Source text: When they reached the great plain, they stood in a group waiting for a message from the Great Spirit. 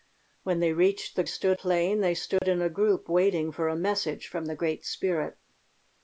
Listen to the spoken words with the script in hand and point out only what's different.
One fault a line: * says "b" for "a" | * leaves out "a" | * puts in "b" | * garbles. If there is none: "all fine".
* says "stood" for "great"